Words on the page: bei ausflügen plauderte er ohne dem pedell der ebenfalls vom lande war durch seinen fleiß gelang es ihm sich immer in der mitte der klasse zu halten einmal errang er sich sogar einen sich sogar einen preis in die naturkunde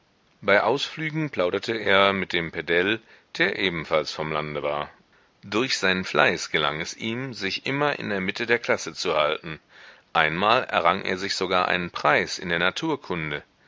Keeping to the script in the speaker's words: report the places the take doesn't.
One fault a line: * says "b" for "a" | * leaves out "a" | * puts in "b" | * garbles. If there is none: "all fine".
* says "mit" for "ohne"
* leaves out "sich sogar einen"
* says "der" for "die"